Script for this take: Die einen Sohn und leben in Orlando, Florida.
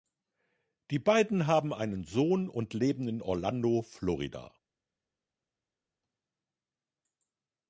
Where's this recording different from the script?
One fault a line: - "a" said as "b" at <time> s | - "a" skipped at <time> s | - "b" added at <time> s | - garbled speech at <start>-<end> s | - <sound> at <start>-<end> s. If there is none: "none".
- "beiden haben" added at 1.0 s